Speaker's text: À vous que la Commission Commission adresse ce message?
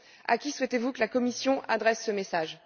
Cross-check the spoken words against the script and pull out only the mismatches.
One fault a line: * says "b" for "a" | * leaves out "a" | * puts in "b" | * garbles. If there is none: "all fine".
* puts in "qui souhaitez"
* leaves out "Commission"